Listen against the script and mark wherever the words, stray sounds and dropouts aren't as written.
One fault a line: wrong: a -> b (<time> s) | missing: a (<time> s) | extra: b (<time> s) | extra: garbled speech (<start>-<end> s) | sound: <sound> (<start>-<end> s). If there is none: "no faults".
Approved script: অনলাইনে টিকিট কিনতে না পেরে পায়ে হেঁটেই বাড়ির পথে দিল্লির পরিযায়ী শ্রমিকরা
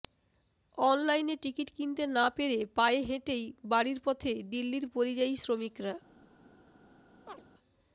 sound: chirp (7.3-7.4 s)